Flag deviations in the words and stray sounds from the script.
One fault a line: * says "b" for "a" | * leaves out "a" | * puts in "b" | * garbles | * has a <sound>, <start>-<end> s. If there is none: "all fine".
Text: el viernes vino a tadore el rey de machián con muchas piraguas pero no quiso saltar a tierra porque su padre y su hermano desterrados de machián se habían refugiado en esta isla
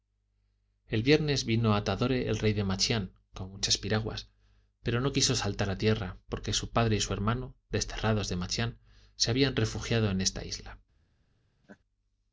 * has a laugh, 11.6-11.8 s